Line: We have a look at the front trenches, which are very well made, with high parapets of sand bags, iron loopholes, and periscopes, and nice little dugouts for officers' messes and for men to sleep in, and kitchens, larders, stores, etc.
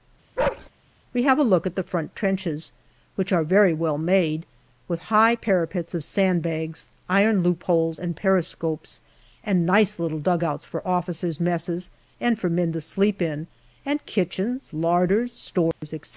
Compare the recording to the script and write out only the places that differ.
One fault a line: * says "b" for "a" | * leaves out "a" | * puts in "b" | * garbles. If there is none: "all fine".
all fine